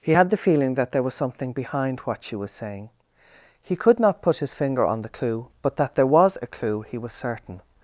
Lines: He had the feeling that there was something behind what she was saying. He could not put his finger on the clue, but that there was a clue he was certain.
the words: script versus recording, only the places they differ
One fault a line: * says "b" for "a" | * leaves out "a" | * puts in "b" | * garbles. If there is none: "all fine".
all fine